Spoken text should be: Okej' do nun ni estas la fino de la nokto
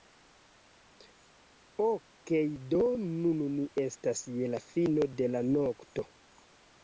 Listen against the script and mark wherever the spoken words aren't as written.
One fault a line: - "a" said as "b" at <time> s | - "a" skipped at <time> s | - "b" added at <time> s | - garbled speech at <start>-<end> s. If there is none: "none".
- "je" added at 4.4 s